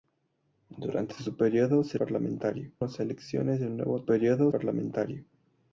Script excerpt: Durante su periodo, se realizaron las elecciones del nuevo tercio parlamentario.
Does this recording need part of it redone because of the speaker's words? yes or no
yes